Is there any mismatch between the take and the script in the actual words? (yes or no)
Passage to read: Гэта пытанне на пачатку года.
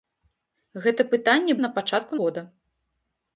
no